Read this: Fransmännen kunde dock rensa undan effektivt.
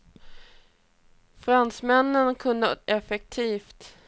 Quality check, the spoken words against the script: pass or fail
fail